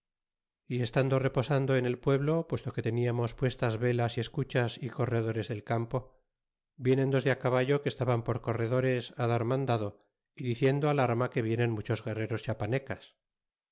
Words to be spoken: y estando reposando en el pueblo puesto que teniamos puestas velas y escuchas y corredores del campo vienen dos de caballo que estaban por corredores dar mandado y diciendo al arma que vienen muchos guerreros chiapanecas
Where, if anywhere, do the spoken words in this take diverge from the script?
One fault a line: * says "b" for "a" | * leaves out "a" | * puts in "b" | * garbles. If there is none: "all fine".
all fine